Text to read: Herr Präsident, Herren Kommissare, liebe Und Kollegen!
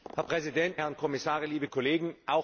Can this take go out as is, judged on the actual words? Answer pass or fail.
pass